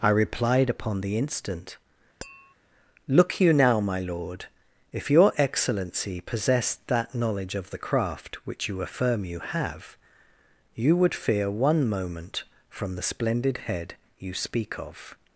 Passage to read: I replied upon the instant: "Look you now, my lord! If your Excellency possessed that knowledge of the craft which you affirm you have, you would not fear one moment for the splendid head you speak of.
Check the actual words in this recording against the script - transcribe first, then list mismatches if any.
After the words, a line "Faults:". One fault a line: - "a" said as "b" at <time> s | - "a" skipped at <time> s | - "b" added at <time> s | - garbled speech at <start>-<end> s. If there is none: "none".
I replied upon the instant: "Look you now, my lord! If your Excellency possessed that knowledge of the craft which you affirm you have, you would fear one moment from the splendid head you speak of.
Faults:
- "not" skipped at 11.1 s
- "for" said as "from" at 12.7 s